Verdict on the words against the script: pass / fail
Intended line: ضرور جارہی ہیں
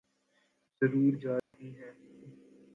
pass